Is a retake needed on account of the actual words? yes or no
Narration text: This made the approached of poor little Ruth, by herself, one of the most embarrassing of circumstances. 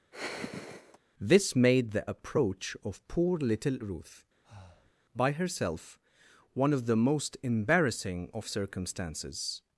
yes